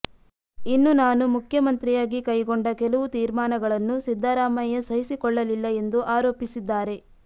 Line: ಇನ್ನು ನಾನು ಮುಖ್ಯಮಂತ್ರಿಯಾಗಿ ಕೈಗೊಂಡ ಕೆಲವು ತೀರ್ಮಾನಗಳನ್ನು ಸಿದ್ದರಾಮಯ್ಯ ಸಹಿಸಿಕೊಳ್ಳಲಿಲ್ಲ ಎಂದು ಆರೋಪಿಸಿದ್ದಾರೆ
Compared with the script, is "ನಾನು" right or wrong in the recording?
right